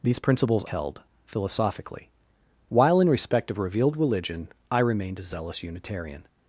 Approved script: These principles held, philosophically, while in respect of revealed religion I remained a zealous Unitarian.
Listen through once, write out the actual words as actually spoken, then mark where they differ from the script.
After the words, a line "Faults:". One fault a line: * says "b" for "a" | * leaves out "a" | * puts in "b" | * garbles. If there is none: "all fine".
These principles held, philosophically, while in respect of revealed religion I remained a zealous Unitarian.
Faults:
all fine